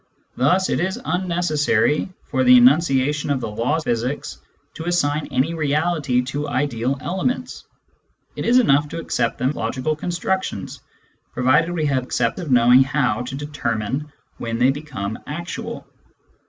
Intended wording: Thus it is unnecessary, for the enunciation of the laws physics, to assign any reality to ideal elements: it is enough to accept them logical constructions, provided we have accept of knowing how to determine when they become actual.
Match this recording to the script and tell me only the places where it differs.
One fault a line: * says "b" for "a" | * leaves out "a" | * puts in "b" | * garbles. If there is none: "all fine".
all fine